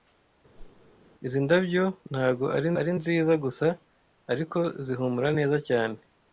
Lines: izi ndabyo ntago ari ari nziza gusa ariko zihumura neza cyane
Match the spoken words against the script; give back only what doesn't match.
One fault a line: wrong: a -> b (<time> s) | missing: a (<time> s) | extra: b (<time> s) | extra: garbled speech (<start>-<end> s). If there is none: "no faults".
no faults